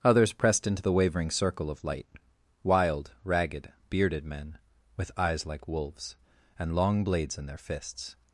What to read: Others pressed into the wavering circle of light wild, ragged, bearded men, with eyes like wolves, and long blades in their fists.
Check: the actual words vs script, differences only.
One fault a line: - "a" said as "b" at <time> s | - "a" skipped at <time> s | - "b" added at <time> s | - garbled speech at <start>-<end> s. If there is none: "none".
none